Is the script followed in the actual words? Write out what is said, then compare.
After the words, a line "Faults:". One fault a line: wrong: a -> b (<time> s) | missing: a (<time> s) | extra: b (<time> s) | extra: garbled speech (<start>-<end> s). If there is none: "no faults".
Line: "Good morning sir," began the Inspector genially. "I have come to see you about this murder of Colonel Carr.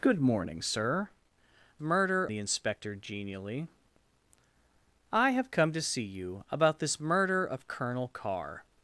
"Good morning sir," murder the Inspector genially. "I have come to see you about this murder of Colonel Carr.
Faults:
wrong: began -> murder (1.8 s)